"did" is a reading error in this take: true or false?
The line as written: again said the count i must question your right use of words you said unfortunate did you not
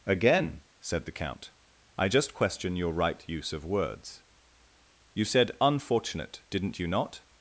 true